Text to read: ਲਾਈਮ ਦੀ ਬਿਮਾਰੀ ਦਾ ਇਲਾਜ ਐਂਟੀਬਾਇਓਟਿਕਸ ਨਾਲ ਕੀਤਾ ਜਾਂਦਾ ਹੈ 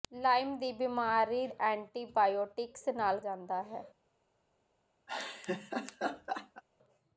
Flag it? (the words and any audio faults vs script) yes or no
yes